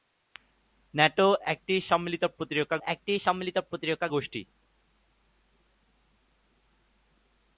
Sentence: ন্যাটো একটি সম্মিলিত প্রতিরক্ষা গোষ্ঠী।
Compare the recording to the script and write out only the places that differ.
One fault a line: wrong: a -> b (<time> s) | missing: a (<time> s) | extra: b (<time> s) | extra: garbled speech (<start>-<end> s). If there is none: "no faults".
extra: একটি সম্মিলিত প্রতিরক্ষা (2.9 s)